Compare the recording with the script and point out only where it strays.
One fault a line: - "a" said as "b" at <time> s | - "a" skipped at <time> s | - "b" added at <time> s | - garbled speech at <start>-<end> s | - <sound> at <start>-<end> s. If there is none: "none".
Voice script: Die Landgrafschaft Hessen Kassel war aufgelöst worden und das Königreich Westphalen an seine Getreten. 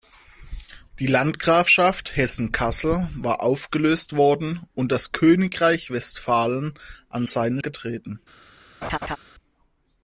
- laugh at 8.8-9.2 s